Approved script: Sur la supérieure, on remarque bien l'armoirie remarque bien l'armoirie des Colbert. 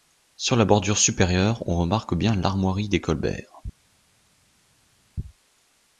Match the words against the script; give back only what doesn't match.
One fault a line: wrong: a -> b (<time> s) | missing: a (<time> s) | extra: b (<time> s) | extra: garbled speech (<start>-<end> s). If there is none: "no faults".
extra: bordure (0.6 s)
missing: remarque bien l'armoirie (2.9 s)